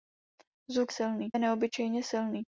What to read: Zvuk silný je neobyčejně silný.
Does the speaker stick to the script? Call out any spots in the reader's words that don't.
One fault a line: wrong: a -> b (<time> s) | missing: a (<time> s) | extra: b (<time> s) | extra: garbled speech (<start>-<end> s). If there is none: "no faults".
no faults